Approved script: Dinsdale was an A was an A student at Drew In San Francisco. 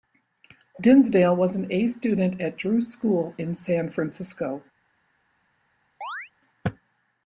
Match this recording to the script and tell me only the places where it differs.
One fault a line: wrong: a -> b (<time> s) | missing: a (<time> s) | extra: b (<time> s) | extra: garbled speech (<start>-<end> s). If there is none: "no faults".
missing: was an A (1.9 s)
extra: School (2.8 s)